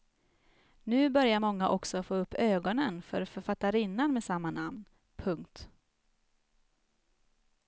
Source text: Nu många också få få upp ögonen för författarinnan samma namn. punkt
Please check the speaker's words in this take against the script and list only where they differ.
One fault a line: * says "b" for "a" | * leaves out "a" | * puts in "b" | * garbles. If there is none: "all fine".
* puts in "börjar"
* leaves out "få"
* puts in "med"